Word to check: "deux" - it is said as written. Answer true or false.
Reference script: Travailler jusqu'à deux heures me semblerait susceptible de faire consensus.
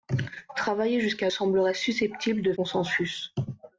false